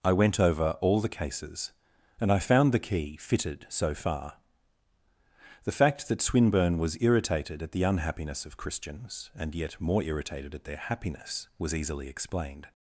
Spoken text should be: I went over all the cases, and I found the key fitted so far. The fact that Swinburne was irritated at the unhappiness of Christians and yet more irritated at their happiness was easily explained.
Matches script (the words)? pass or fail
pass